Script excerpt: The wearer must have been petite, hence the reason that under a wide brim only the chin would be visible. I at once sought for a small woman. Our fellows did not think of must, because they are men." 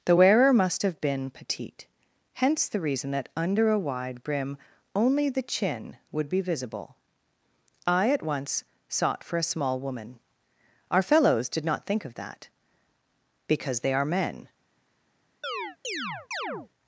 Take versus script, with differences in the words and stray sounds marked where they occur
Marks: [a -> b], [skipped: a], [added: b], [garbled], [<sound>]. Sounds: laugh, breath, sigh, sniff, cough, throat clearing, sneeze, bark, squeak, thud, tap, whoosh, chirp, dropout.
The wearer must have been petite, hence the reason that under a wide brim only the chin would be visible. I at once sought for a small woman. Our fellows did not think of [must, -> that] because they are men." [chirp]